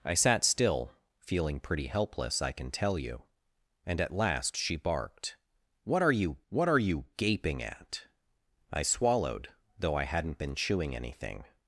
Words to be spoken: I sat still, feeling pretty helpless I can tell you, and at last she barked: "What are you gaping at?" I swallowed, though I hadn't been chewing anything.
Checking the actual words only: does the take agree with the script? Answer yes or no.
no